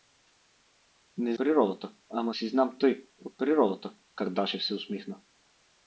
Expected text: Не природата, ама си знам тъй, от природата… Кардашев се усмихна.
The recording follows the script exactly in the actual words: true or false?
true